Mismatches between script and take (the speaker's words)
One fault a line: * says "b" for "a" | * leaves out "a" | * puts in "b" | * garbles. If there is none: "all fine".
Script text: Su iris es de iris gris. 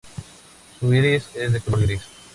* says "color" for "iris"